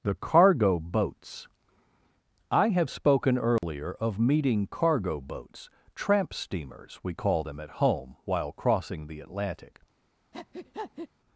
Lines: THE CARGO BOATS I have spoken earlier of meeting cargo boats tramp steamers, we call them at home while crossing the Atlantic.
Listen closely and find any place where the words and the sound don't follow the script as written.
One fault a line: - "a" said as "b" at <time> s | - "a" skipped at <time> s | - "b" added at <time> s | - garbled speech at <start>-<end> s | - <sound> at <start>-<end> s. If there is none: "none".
- dropout at 3.6-3.6 s
- breath at 10.3-11.1 s